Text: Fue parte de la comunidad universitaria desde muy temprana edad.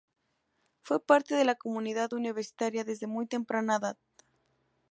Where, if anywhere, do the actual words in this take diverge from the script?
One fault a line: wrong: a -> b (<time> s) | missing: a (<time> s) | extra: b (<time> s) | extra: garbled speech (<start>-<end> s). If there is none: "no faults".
no faults